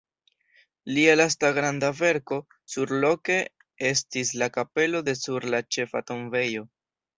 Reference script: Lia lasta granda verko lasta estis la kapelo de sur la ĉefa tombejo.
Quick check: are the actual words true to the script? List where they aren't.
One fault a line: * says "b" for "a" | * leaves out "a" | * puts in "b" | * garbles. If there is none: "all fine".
* says "surloke" for "lasta"